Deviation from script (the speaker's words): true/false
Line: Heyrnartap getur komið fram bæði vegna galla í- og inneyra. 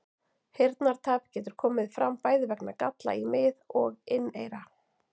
true